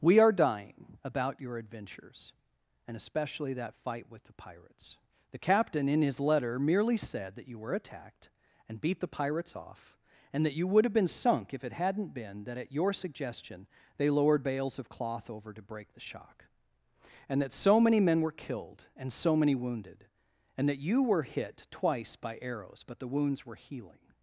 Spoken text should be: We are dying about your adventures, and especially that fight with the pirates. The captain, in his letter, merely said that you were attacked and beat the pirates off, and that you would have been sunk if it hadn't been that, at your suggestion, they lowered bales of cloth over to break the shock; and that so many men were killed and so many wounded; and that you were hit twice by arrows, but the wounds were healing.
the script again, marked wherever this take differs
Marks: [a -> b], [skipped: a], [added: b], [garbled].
We are dying about your adventures, and especially that fight with the pirates. The captain, in his letter, merely said that you were attacked and beat the pirates off, and that you would have been sunk if it hadn't been that, at your suggestion, they lowered bales of cloth over to break the shock; and that so many men were killed and so many wounded; and that you were hit twice by arrows, but the wounds were healing.